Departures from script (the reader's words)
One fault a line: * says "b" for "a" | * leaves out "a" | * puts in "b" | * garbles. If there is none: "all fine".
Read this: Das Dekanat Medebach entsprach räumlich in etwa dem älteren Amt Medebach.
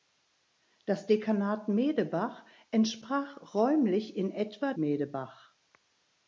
* leaves out "dem älteren Amt"